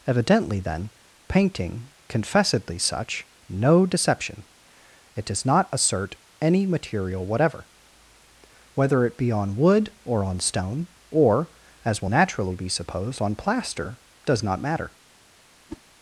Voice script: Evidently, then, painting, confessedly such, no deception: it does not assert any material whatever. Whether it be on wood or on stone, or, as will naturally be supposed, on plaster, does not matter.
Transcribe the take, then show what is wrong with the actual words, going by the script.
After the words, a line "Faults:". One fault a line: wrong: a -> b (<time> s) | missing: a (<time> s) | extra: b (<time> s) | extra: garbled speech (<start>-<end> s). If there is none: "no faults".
Evidently, then, painting, confessedly such, no deception: it does not assert any material whatever. Whether it be on wood or on stone, or, as will naturally be supposed, on plaster, does not matter.
Faults:
no faults